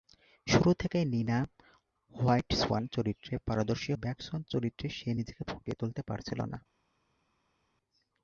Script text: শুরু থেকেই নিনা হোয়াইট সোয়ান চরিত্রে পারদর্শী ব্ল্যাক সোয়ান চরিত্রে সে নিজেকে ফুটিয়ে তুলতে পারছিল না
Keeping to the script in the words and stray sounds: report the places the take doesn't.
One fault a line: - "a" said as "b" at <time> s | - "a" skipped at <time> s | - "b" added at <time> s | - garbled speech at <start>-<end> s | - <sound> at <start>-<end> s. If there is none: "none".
none